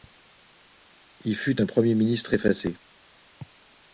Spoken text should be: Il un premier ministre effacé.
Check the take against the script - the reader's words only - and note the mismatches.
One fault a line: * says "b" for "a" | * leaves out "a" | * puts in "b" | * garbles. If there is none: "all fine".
* puts in "fut"